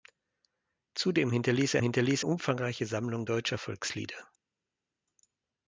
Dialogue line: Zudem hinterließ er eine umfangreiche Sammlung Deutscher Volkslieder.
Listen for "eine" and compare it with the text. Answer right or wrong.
wrong